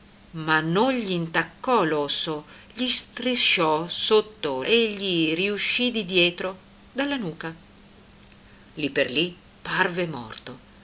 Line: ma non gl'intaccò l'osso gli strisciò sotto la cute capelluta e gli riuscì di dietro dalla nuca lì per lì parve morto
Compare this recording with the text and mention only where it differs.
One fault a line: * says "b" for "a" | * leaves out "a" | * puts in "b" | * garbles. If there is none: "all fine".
* leaves out "la cute capelluta"